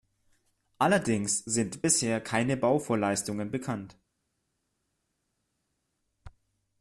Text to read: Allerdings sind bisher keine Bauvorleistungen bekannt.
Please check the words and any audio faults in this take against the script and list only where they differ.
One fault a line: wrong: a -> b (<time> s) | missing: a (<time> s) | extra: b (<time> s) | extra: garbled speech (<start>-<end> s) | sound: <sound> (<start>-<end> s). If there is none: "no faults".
no faults